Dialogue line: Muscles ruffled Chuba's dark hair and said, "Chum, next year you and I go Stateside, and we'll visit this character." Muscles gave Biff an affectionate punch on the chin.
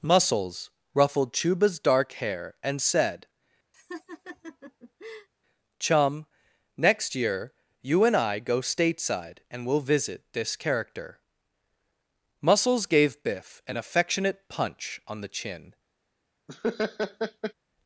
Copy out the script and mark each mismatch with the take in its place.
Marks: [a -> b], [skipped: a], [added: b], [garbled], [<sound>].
Muscles ruffled Chuba's dark hair and said, [laugh] "Chum, next year you and I go Stateside, and we'll visit this character." Muscles gave Biff an affectionate punch on the chin. [laugh]